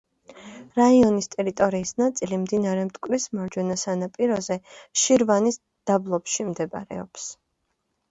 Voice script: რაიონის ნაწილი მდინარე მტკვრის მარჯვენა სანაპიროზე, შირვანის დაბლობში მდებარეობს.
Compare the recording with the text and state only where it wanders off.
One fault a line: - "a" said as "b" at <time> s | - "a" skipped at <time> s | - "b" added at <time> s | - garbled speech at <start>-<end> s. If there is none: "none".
- "ტერიტორიის" added at 1.4 s